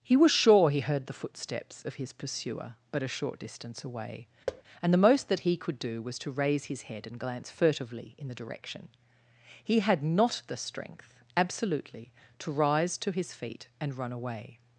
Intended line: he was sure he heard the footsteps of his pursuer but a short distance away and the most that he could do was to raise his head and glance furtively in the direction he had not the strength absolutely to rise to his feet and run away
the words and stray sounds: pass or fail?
fail